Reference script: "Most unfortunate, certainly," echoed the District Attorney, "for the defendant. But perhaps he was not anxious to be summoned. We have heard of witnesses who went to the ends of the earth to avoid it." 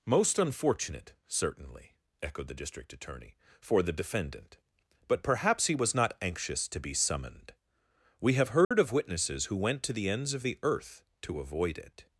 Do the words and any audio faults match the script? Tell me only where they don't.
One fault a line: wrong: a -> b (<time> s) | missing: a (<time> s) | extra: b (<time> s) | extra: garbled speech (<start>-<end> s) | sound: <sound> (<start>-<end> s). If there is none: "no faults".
sound: dropout (8.6-8.7 s)